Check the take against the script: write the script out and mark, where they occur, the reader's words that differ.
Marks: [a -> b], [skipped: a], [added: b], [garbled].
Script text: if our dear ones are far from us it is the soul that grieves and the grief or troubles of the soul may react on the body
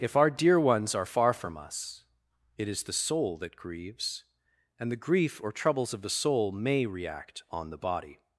if our dear ones are far from us it is the soul that grieves and the grief or troubles of the soul may react on the body